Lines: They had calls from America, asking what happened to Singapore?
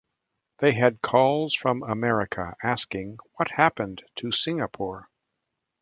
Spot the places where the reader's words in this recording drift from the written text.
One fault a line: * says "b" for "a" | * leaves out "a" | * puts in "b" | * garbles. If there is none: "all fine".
all fine